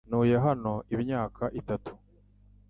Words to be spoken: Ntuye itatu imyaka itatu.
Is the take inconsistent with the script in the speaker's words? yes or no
yes